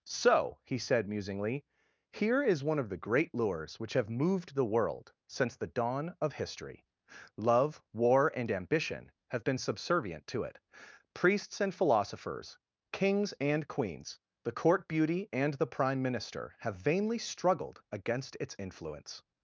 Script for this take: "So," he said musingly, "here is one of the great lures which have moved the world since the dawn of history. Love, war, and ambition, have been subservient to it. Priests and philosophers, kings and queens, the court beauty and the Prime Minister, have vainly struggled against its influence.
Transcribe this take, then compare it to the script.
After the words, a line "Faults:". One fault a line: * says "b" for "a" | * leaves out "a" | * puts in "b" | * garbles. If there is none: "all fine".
"So," he said musingly, "here is one of the great lures which have moved the world since the dawn of history. Love, war, and ambition, have been subservient to it. Priests and philosophers, kings and queens, the court beauty and the Prime Minister, have vainly struggled against its influence.
Faults:
all fine